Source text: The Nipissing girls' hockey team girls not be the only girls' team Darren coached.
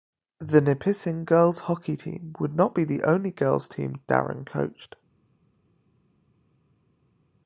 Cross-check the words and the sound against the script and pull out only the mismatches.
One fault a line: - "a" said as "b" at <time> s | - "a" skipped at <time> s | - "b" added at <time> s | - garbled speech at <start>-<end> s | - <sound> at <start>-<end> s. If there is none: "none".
- "girls" said as "would" at 2.4 s